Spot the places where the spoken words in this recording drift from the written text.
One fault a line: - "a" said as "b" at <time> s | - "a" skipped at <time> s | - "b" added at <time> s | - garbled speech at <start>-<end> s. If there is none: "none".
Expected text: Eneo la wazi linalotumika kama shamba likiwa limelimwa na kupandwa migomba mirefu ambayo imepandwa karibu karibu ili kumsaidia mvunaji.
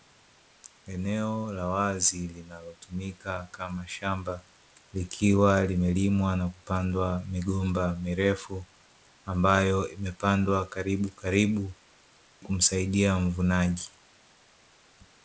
- "ili" skipped at 11.7 s